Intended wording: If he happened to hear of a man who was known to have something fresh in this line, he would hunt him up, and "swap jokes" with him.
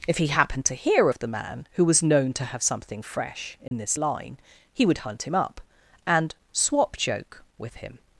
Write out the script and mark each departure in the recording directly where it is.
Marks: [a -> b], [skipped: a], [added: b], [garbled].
If he happened to hear of [a -> the] man who was known to have something fresh in this line, he would hunt him up, and "swap [jokes" -> joke] with him.